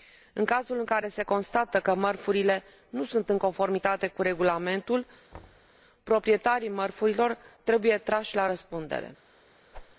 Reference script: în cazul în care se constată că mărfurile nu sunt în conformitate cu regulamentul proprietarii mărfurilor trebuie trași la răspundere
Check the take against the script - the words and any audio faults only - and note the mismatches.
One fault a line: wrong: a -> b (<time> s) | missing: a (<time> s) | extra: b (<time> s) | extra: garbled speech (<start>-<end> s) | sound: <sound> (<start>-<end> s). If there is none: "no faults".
sound: thud (5.3-5.7 s)
sound: whoosh (9.7-10.0 s)